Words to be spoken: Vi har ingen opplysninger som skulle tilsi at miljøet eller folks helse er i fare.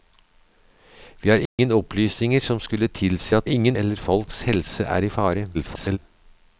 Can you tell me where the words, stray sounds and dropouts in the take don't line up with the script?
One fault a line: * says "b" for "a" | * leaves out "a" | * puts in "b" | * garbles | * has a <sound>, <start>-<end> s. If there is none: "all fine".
* has a dropout, 1.5-1.6 s
* says "ingen" for "miljøet"
* garbles